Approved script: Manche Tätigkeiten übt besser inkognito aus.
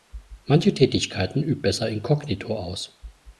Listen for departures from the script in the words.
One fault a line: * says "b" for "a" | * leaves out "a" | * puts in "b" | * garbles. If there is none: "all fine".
all fine